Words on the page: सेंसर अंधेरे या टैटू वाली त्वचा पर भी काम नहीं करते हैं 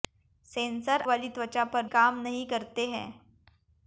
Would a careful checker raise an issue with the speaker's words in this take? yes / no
yes